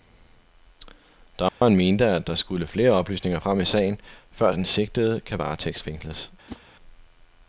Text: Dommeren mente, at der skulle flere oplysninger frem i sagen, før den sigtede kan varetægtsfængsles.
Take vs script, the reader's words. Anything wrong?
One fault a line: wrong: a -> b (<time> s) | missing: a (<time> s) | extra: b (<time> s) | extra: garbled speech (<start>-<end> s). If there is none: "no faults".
no faults